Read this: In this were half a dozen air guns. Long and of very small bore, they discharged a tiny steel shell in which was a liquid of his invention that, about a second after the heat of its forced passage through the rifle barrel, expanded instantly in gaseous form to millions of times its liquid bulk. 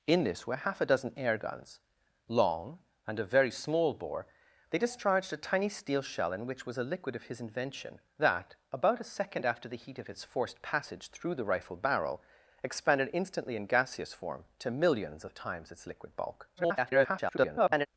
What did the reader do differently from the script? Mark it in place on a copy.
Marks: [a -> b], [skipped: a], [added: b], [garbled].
In this were half a dozen air guns. Long and of very small bore, they discharged a tiny steel shell in which was a liquid of his invention that, about a second after the heat of its forced passage through the rifle barrel, expanded instantly in gaseous form to millions of times its liquid bulk. [garbled]